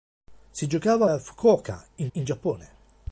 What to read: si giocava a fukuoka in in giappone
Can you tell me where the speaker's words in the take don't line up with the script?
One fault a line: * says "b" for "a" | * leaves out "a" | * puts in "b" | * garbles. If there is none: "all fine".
all fine